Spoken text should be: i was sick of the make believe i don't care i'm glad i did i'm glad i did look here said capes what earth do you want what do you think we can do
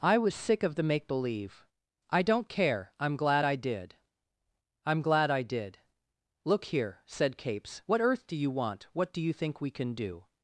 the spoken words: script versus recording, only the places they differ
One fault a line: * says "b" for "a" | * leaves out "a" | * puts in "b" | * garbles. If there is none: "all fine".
all fine